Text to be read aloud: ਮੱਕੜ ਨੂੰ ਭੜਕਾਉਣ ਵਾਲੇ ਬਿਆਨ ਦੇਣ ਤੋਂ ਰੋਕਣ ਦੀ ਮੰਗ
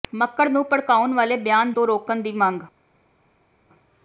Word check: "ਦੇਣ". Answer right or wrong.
wrong